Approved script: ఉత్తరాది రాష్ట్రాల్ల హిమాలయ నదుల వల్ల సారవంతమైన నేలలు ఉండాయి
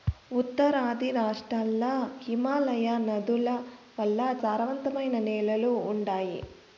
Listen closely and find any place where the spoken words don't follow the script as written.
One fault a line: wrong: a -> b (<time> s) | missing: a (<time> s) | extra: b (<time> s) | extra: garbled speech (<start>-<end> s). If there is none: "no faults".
no faults